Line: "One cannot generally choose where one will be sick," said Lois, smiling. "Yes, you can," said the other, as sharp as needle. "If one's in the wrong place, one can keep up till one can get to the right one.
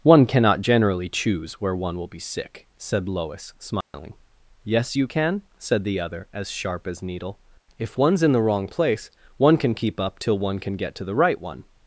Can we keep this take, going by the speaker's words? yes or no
yes